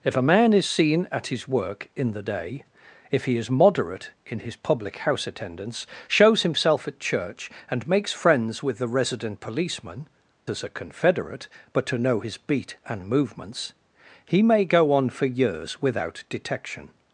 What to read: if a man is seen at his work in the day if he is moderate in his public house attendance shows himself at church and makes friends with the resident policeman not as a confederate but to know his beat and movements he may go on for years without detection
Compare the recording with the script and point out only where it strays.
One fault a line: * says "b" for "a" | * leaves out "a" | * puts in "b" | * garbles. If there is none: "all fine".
* leaves out "not"